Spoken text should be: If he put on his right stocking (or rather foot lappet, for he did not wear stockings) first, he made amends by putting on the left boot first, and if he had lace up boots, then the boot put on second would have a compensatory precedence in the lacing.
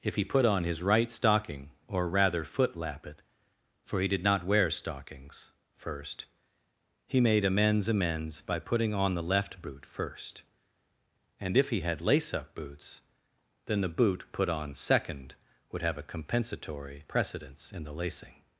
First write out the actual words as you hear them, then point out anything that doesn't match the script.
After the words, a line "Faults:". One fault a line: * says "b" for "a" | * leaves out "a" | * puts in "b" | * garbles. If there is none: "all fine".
If he put on his right stocking (or rather foot lappet, for he did not wear stockings) first, he made amends amends by putting on the left boot first, and if he had lace up boots, then the boot put on second would have a compensatory precedence in the lacing.
Faults:
* puts in "amends"